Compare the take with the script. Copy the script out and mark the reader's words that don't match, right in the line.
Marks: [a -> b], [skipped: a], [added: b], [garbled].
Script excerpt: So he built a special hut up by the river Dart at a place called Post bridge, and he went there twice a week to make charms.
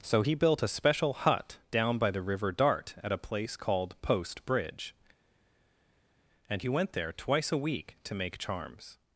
So he built a special hut [up -> down] by the river Dart at a place called Post bridge, and he went there twice a week to make charms.